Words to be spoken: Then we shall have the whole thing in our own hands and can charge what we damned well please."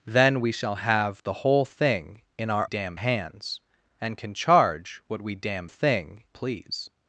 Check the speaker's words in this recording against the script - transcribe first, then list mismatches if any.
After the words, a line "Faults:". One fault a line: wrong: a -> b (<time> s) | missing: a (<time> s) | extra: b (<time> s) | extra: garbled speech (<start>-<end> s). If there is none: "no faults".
Then we shall have the whole thing in our damned hands and can charge what we damned thing please."
Faults:
wrong: own -> damned (2.6 s)
wrong: well -> thing (5.6 s)